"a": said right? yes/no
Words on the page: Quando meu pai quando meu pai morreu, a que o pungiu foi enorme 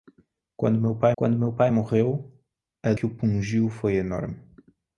yes